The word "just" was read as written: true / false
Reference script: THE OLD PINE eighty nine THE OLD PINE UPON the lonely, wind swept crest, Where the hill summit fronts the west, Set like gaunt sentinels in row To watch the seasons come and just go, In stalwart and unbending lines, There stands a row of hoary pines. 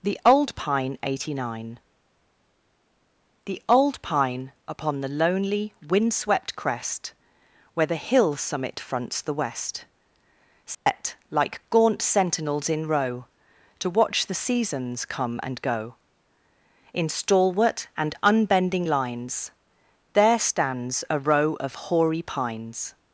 false